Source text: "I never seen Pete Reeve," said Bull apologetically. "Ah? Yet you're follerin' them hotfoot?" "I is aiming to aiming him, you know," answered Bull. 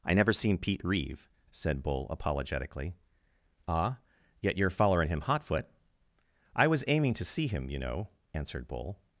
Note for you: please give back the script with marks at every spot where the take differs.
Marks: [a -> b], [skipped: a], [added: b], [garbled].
"I never seen Pete Reeve," said Bull apologetically. "Ah? Yet you're follerin' [them -> him] hotfoot?" "I [is -> was] aiming to [aiming -> see] him, you know," answered Bull.